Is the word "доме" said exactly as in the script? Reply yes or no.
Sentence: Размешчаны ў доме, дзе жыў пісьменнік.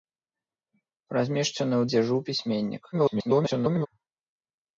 no